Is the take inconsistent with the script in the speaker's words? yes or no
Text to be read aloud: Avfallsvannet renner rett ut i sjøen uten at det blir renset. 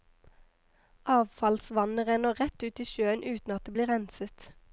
no